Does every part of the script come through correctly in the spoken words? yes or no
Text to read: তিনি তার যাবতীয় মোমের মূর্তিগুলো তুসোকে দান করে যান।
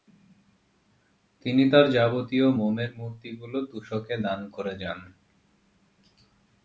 yes